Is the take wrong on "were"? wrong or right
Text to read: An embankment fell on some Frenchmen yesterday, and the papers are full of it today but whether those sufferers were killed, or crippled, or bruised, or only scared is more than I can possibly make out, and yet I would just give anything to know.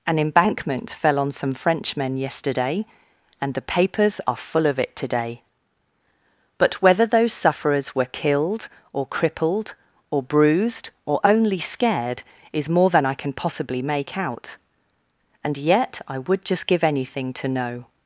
right